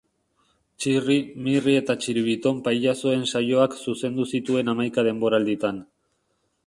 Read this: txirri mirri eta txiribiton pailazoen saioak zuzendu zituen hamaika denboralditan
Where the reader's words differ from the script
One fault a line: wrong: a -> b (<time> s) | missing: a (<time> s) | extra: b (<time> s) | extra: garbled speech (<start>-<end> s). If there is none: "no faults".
no faults